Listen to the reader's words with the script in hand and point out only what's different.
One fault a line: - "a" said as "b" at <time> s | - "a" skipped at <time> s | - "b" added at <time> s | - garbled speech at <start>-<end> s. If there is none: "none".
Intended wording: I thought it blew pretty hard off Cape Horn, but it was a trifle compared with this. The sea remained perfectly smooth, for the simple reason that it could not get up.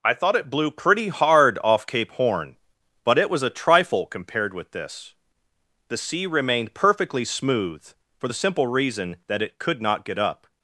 none